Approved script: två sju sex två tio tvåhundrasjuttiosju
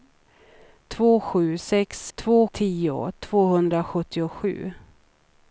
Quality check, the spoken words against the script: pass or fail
pass